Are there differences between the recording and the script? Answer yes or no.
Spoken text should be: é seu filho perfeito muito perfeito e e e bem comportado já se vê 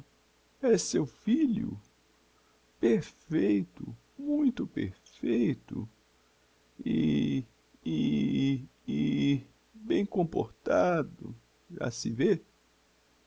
no